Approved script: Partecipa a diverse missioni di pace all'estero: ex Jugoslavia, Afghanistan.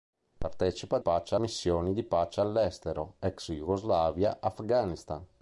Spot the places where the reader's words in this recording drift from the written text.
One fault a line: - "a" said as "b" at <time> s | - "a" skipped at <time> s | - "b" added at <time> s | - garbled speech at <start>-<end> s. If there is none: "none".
- "diverse" said as "pace" at 1.0 s